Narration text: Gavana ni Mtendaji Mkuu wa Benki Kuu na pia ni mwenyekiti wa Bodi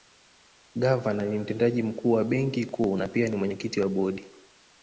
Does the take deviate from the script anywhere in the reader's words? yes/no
no